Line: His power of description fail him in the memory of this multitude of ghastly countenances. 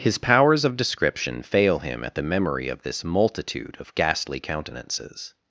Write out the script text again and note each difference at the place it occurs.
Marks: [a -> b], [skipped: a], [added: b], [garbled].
His [power -> powers] of description fail him [in -> at] the memory of this multitude of ghastly countenances.